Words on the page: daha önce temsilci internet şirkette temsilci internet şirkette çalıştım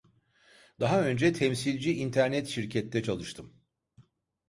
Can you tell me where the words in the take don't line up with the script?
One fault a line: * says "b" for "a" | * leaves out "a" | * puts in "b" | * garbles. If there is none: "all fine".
* leaves out "temsilci internet şirkette"